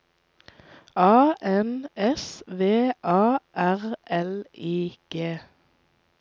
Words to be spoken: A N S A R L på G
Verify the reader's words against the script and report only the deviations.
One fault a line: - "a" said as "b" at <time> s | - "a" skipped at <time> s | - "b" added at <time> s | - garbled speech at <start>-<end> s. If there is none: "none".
- "V" added at 2.5 s
- "på" said as "I" at 4.6 s